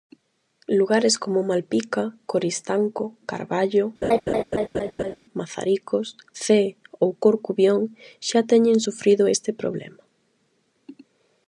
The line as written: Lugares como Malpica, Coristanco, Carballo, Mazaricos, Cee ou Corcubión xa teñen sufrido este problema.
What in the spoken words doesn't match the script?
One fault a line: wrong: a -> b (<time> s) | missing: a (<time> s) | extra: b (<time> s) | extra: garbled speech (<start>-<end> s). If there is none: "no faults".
no faults